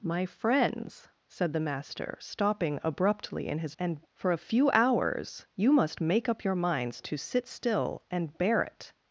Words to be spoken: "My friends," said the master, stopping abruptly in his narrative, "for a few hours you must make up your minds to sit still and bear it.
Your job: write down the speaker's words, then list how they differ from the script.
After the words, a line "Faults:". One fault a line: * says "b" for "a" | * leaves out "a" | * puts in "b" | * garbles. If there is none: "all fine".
"My friends," said the master, stopping abruptly in his and, "for a few hours you must make up your minds to sit still and bear it.
Faults:
* says "and" for "narrative"